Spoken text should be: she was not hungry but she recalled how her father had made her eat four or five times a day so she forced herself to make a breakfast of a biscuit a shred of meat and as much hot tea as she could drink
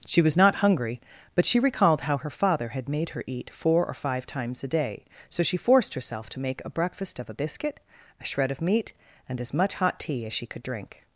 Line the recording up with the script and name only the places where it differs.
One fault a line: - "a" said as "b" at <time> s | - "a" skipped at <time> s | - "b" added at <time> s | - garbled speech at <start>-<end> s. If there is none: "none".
none